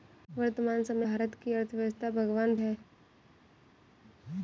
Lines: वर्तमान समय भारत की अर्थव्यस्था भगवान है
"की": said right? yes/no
yes